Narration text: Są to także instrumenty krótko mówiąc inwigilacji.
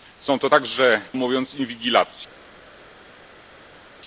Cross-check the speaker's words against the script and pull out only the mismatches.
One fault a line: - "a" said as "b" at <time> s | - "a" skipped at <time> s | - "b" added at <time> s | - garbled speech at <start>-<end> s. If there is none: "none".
- "instrumenty krótko" skipped at 1.0 s